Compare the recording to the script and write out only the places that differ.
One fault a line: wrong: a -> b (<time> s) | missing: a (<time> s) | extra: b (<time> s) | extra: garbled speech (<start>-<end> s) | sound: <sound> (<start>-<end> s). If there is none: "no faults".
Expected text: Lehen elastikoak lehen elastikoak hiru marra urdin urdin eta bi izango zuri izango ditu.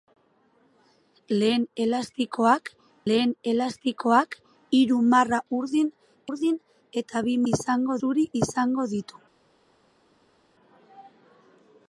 no faults